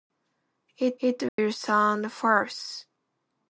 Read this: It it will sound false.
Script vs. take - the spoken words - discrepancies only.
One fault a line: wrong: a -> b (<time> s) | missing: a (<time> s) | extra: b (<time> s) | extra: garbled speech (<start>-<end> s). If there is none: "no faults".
no faults